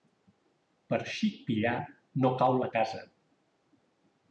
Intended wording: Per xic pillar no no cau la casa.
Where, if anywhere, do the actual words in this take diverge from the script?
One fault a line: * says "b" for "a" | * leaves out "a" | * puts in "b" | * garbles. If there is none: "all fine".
* leaves out "no"